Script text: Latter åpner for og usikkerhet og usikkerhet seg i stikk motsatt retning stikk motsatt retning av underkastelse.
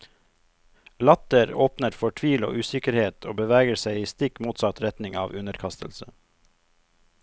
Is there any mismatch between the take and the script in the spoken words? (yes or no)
yes